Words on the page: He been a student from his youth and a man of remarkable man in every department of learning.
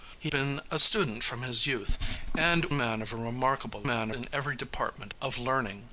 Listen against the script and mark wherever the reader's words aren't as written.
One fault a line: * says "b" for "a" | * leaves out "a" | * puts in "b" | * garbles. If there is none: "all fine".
all fine